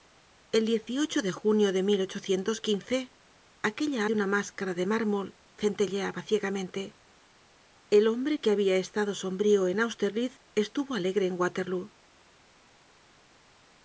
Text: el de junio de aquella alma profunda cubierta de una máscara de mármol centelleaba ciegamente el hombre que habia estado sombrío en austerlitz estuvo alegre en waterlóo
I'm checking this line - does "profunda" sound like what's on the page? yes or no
no